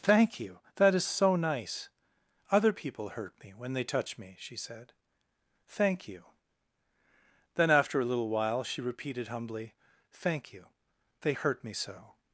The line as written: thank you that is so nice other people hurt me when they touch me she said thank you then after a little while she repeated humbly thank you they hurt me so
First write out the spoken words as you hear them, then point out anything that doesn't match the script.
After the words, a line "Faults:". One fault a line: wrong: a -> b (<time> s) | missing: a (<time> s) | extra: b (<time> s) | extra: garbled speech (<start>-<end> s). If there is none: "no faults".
thank you that is so nice other people hurt me when they touch me she said thank you then after a little while she repeated humbly thank you they hurt me so
Faults:
no faults